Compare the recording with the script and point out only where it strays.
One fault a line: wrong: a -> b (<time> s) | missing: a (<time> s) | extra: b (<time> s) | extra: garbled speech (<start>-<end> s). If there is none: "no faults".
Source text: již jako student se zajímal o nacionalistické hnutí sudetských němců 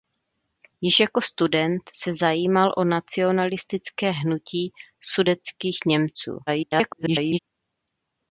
extra: garbled speech (6.5-7.4 s)